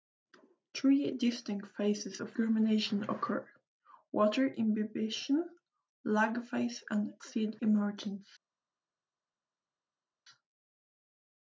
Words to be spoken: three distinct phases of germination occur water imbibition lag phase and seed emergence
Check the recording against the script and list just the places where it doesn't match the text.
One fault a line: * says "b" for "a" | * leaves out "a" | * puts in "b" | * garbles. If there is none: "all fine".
all fine